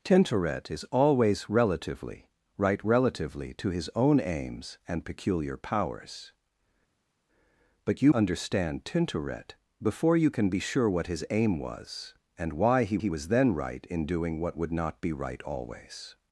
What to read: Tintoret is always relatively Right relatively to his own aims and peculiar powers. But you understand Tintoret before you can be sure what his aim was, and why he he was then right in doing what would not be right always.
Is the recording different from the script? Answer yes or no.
no